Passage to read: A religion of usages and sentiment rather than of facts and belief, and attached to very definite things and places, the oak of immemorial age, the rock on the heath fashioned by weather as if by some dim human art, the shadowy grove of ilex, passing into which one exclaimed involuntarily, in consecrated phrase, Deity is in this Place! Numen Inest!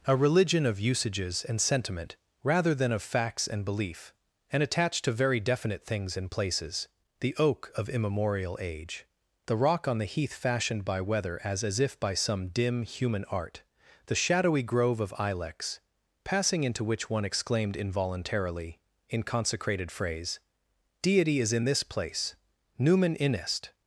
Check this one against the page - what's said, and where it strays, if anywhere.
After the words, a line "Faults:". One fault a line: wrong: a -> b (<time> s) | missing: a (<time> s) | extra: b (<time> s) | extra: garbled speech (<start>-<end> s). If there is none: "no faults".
A religion of usages and sentiment rather than of facts and belief, and attached to very definite things and places, the oak of immemorial age, the rock on the heath fashioned by weather as as if by some dim human art, the shadowy grove of ilex, passing into which one exclaimed involuntarily, in consecrated phrase, Deity is in this Place! Numen Inest!
Faults:
extra: as (11.6 s)